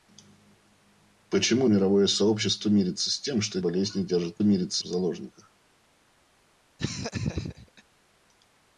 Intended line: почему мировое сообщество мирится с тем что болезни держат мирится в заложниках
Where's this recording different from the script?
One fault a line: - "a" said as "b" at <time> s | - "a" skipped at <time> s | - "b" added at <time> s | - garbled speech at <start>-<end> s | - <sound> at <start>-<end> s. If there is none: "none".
- laugh at 6.8-7.8 s